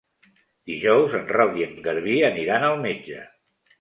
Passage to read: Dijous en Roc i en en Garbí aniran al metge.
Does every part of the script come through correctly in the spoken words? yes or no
yes